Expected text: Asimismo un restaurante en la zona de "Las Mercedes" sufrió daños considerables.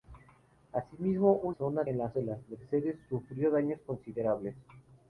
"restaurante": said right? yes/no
no